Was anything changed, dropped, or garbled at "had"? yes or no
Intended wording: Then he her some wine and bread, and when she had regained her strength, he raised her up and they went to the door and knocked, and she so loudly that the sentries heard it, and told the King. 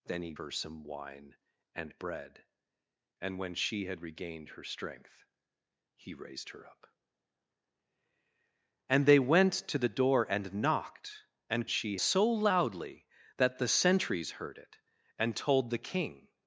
no